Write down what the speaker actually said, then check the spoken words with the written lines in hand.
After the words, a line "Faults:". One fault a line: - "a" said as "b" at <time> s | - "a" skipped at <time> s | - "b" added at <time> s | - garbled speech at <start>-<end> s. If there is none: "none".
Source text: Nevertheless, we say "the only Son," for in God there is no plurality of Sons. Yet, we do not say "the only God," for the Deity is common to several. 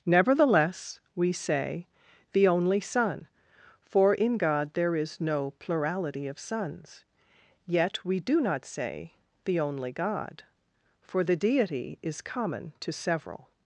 Nevertheless, we say "the only Son," for in God there is no plurality of Sons. Yet, we do not say "the only God," for the Deity is common to several.
Faults:
none